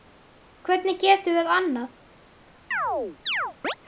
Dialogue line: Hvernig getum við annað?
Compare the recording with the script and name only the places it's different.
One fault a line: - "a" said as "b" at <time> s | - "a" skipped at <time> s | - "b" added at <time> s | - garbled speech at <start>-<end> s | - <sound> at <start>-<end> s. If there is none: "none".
- chirp at 2.7-3.8 s